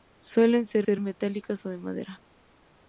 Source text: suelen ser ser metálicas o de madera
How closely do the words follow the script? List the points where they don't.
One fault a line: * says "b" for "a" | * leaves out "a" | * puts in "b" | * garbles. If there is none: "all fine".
all fine